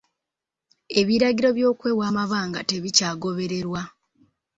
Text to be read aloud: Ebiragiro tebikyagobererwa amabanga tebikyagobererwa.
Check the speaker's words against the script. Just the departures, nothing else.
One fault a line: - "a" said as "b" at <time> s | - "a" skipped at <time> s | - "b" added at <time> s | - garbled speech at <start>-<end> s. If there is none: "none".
- "tebikyagobererwa" said as "by'okwewa" at 1.6 s